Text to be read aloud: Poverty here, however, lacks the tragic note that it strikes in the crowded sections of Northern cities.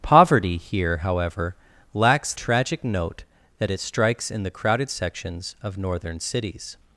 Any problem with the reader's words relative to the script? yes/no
yes